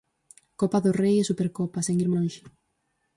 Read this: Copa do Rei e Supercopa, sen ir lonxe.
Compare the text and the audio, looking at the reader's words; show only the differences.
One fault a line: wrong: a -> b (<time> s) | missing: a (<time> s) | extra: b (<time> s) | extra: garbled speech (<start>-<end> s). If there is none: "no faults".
no faults